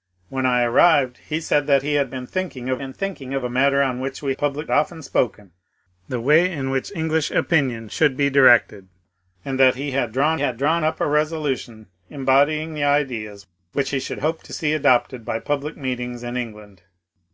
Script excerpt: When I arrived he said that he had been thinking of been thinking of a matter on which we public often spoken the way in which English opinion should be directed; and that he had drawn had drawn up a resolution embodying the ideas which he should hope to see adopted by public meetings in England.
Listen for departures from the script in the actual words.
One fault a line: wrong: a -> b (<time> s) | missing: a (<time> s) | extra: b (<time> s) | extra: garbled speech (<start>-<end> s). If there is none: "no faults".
no faults